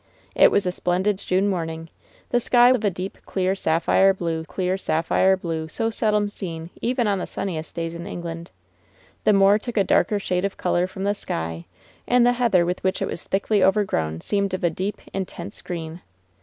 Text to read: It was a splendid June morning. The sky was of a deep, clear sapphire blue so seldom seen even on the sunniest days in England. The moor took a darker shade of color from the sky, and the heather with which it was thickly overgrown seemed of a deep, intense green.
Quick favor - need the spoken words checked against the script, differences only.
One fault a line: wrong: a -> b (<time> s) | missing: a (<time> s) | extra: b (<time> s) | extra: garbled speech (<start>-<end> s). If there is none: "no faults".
missing: was (2.7 s)
extra: clear sapphire blue (4.5 s)